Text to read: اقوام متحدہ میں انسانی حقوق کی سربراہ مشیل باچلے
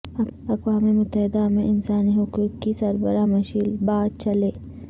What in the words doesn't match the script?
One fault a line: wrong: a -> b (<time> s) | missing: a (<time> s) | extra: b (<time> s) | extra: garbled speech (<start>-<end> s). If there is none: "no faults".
no faults